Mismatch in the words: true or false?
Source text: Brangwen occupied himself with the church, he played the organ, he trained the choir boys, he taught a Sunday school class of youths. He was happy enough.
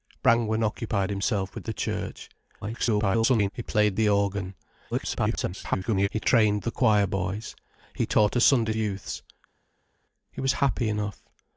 true